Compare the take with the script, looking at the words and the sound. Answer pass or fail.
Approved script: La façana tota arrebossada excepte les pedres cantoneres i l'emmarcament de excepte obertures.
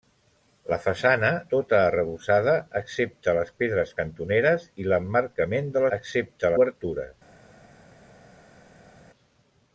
pass